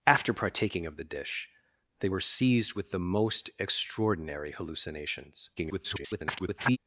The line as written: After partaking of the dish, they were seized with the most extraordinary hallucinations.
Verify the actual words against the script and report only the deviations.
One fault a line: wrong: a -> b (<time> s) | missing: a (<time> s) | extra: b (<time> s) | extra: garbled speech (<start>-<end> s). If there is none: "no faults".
extra: garbled speech (5.6-6.8 s)